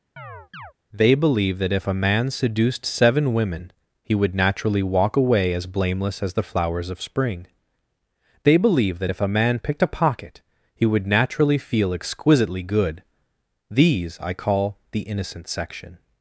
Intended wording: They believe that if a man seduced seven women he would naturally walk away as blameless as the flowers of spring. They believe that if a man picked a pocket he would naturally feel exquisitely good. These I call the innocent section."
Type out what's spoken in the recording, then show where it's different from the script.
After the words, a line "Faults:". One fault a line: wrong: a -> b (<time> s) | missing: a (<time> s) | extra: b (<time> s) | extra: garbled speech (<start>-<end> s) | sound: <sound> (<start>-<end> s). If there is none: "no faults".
They believe that if a man seduced seven women he would naturally walk away as blameless as the flowers of spring. They believe that if a man picked a pocket he would naturally feel exquisitely good. These I call the innocent section."
Faults:
sound: chirp (0.2-0.7 s)